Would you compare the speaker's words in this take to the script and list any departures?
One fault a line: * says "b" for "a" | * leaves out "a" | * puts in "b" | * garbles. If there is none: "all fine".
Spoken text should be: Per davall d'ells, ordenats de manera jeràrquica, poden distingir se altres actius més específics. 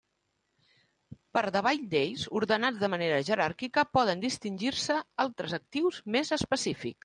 all fine